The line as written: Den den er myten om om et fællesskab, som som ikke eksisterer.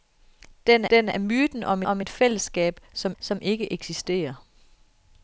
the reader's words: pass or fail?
pass